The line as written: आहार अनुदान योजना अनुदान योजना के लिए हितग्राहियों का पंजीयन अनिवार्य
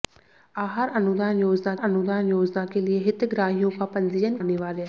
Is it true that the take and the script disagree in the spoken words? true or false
false